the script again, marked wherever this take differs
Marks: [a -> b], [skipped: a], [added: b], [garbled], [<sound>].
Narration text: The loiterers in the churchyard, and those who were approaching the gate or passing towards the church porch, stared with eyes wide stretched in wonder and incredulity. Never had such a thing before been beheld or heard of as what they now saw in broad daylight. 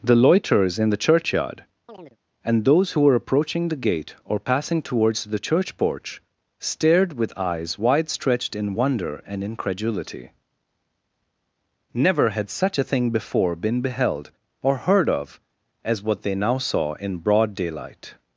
The loiterers in the churchyard, [chirp] and those who were approaching the gate or passing towards the church porch, stared with eyes wide stretched in wonder and incredulity. Never had such a thing before been beheld or heard of as what they now saw in broad daylight.